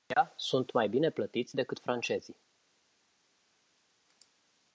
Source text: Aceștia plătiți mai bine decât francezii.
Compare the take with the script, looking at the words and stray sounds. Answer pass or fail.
fail